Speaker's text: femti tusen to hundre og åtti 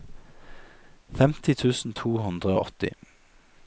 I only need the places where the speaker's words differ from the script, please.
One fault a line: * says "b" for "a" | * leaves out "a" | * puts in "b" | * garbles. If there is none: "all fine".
all fine